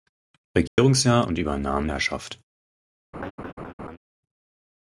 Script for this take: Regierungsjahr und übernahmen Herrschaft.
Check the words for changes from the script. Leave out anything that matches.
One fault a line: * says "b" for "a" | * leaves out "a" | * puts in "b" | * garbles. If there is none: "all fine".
all fine